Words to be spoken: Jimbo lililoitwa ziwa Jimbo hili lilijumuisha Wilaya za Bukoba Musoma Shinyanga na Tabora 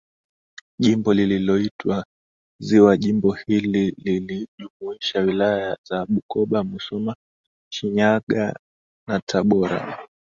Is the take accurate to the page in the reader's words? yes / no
yes